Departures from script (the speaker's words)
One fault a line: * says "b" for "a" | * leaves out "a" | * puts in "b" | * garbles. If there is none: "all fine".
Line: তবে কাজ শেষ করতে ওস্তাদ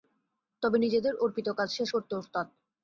* puts in "নিজেদের অর্পিত"